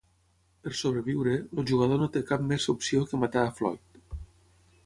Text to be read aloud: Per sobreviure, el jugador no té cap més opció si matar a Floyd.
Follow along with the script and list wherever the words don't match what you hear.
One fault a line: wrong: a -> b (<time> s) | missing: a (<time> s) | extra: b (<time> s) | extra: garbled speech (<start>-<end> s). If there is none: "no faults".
wrong: si -> que (3.1 s)